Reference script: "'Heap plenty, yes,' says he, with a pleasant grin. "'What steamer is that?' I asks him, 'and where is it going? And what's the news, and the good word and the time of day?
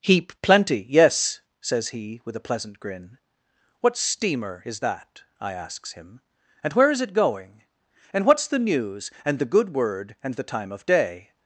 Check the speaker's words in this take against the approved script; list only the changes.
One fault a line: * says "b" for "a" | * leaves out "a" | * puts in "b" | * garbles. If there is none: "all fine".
all fine